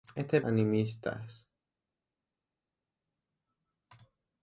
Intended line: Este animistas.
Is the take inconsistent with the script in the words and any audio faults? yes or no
no